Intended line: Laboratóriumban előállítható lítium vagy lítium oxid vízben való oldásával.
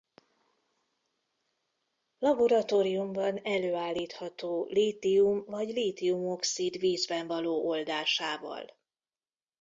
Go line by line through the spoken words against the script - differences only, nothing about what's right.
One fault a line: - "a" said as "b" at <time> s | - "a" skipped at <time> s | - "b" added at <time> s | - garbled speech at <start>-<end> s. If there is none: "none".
none